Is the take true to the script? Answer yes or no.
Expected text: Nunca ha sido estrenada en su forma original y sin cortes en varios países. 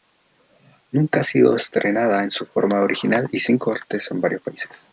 yes